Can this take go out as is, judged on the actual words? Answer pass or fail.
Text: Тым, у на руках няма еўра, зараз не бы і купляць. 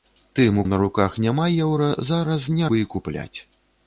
pass